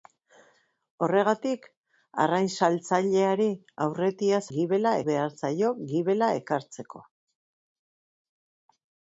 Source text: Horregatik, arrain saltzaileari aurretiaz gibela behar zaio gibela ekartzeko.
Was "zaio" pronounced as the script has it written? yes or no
yes